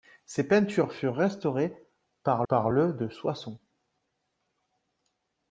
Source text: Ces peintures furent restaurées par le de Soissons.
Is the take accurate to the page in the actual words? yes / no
no